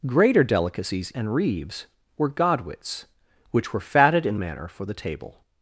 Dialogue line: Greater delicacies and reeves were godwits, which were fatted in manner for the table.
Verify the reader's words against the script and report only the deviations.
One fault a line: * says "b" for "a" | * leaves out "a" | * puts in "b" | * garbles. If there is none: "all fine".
all fine